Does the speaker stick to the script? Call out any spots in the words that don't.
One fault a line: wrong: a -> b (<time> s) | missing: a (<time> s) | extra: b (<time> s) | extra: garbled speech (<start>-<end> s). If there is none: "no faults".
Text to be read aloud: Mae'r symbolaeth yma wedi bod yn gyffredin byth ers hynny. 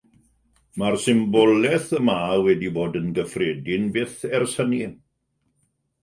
no faults